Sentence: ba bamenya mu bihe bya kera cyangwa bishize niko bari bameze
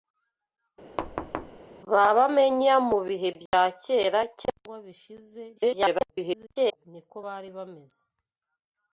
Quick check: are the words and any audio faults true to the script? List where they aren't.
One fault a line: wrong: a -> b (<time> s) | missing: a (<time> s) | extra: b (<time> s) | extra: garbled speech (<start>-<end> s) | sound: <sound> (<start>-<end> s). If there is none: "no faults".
sound: thud (1.0-1.6 s)
sound: dropout (3.5-3.5 s)
extra: garbled speech (5.6-6.9 s)